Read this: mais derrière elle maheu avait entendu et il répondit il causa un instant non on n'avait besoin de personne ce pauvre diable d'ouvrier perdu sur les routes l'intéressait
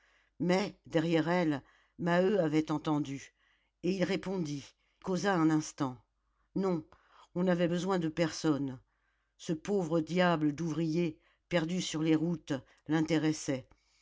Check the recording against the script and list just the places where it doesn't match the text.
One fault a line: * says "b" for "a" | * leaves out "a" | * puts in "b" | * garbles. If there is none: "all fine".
* leaves out "il"